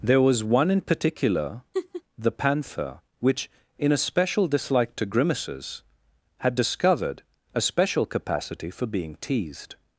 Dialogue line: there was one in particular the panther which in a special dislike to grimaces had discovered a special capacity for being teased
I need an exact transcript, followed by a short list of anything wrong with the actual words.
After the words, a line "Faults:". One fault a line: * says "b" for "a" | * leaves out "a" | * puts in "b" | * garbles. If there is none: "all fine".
there was one in particular the panther which in a special dislike to grimaces had discovered a special capacity for being teased
Faults:
all fine